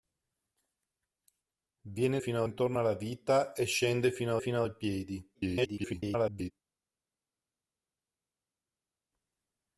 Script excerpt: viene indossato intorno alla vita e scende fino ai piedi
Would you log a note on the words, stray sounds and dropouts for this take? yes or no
yes